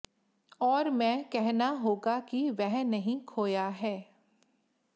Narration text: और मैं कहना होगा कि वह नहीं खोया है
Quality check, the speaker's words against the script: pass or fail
pass